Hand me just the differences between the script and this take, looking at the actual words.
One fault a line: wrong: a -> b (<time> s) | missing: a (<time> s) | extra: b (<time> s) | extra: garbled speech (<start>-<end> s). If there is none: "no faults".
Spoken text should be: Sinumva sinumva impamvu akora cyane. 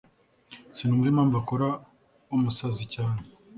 missing: sinumva (1.1 s)
extra: umusazi (2.4 s)